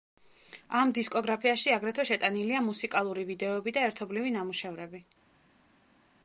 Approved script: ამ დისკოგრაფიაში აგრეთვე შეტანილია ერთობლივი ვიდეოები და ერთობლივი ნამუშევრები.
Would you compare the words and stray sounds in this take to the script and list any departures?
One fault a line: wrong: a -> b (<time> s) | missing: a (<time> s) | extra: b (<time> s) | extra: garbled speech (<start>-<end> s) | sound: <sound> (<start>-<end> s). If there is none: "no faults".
wrong: ერთობლივი -> მუსიკალური (2.7 s)